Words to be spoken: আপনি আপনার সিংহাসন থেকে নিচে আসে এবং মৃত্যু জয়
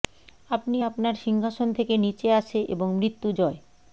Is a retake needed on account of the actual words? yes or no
no